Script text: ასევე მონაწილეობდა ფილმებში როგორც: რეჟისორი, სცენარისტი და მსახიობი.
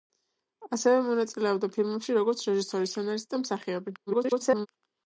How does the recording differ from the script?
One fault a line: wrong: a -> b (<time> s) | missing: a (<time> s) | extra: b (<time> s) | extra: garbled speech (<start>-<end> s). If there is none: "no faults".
extra: garbled speech (4.1-4.7 s)